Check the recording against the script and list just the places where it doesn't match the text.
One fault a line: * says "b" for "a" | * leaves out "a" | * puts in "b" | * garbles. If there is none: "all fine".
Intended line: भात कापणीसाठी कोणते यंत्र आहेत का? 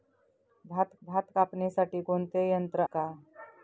* puts in "भात"
* leaves out "आहेत"